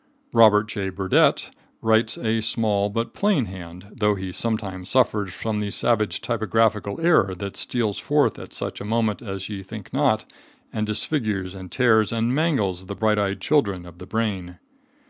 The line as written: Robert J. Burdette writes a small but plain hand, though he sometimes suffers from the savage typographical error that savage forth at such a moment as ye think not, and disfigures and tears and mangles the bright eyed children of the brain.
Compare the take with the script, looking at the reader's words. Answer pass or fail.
fail